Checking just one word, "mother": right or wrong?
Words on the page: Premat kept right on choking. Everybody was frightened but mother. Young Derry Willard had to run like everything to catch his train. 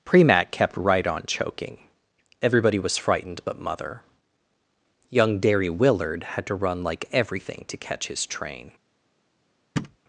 right